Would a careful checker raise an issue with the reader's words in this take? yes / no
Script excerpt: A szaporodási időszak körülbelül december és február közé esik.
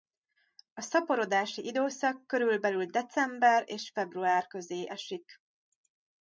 no